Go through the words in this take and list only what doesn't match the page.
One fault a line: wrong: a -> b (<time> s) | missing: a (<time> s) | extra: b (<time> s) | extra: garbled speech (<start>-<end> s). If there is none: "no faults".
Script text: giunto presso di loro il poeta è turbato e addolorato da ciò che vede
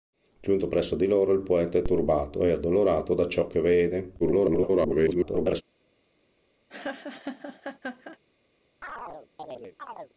extra: garbled speech (4.2-5.6 s)